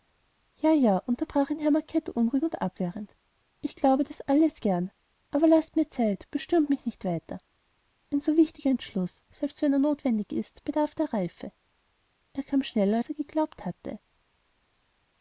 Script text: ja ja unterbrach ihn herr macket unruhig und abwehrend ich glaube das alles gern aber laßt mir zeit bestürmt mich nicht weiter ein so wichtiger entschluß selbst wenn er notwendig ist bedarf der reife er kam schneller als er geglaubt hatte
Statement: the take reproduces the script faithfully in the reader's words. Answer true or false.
true